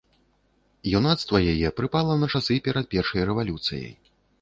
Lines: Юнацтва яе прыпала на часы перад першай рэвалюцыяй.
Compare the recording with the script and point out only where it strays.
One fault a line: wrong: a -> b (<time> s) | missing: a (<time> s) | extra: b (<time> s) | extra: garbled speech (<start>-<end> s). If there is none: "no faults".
no faults